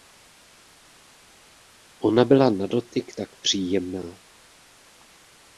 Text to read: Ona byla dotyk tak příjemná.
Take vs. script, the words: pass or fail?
fail